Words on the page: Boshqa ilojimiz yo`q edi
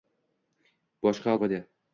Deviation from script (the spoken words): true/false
true